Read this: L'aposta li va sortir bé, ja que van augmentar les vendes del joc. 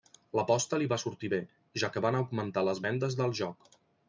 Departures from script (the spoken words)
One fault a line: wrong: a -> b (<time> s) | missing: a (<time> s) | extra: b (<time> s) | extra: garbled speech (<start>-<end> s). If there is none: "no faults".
no faults